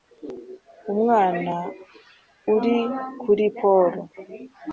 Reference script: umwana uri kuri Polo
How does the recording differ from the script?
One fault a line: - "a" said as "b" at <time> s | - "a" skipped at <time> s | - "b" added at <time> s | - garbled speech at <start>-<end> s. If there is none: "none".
none